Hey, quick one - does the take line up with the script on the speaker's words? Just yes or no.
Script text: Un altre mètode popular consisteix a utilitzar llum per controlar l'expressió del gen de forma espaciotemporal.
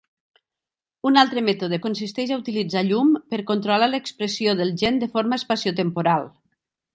no